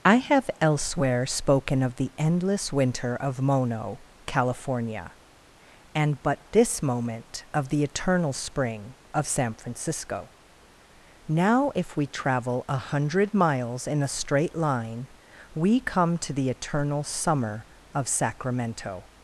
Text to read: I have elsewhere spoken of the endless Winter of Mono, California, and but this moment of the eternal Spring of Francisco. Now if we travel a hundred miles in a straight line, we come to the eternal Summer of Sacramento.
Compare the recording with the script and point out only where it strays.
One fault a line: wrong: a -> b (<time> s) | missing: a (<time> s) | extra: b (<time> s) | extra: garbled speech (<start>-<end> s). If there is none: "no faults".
extra: San (9.3 s)